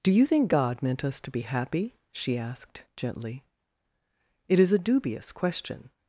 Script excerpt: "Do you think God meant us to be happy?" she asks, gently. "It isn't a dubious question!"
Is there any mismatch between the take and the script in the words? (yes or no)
yes